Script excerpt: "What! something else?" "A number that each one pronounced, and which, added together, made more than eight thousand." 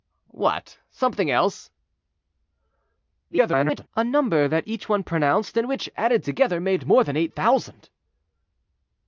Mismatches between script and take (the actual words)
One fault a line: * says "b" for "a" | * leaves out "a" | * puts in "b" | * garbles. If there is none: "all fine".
* garbles